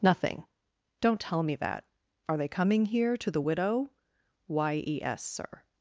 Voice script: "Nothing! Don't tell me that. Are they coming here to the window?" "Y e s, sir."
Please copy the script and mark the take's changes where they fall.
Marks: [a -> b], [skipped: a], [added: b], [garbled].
"Nothing! Don't tell me that. Are they coming here to the [window?" -> widow] "Y e s, sir."